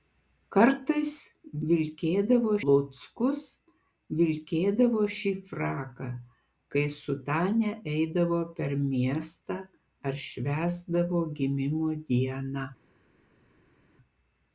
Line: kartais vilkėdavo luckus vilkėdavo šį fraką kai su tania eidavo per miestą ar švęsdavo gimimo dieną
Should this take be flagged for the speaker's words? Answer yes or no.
no